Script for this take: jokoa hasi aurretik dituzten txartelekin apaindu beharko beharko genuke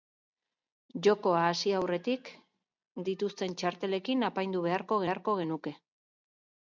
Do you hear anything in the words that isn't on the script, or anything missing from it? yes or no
no